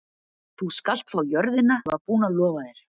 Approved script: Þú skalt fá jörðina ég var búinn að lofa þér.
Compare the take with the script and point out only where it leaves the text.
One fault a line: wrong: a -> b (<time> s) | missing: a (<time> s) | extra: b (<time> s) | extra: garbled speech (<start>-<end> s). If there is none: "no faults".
no faults